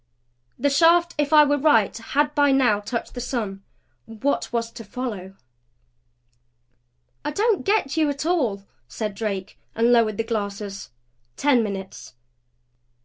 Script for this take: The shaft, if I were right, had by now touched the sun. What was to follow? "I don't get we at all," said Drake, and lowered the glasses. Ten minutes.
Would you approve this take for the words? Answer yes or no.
no